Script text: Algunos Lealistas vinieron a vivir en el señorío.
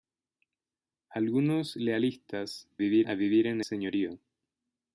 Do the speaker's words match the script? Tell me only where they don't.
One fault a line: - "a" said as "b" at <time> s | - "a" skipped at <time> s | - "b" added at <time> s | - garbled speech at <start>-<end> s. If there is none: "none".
- "vinieron" said as "vivir" at 2.8 s
- "el" skipped at 3.6 s